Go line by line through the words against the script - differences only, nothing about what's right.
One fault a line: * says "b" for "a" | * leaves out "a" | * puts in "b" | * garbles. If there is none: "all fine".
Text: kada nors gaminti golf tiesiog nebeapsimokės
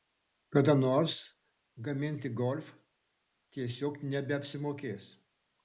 all fine